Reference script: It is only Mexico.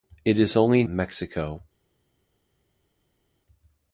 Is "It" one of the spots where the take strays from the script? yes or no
no